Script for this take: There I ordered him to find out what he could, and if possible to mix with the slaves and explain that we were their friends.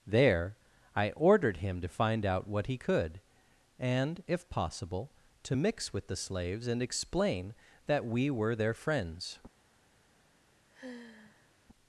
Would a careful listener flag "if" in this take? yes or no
no